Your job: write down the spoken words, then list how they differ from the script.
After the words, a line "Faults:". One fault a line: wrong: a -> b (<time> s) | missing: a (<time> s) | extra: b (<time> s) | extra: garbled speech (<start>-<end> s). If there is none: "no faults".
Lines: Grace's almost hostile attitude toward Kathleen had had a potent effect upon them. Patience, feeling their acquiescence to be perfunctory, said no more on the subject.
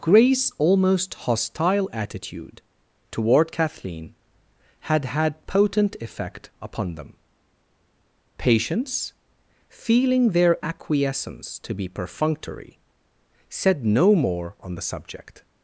Grace's almost hostile attitude toward Kathleen had had potent effect upon them. Patience, feeling their acquiescence to be perfunctory, said no more on the subject.
Faults:
missing: a (5.5 s)